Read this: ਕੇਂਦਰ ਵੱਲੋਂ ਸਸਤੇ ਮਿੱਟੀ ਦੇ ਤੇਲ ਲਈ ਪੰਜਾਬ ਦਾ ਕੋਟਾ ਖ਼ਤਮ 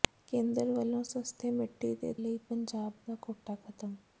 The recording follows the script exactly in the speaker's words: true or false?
false